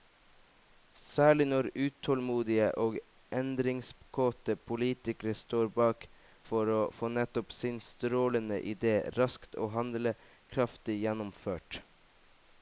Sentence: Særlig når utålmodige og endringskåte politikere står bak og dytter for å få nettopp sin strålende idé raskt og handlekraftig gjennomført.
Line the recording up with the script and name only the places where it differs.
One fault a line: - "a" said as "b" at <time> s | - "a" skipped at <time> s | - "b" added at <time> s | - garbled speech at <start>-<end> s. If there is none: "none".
- "og dytter" skipped at 6.1 s